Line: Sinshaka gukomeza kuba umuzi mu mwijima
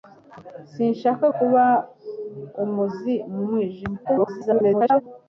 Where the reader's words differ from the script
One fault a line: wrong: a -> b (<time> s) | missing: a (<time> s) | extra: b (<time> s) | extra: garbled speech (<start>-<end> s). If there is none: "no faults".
missing: gukomeza (1.2 s)
extra: garbled speech (4.0-5.0 s)